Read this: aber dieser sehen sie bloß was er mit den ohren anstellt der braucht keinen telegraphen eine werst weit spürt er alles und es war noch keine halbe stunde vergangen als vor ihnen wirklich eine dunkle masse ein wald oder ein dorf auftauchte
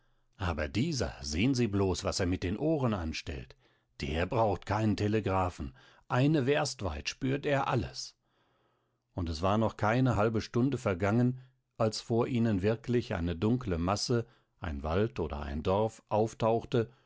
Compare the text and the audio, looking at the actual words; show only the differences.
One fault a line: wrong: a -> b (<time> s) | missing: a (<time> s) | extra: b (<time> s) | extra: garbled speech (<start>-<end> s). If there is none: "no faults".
no faults